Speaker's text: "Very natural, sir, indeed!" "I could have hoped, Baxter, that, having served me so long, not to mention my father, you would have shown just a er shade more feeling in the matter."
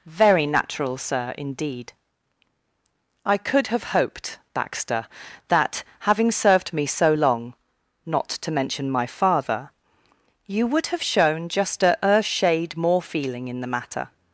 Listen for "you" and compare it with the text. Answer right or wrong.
right